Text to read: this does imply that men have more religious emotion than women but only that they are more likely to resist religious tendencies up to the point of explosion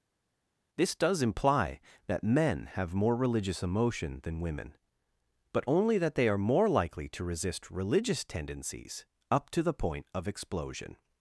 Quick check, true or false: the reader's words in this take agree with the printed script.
true